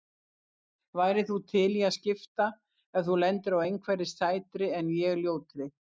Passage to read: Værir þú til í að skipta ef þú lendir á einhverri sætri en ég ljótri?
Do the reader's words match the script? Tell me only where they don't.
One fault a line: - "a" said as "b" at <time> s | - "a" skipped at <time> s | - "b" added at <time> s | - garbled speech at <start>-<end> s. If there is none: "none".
none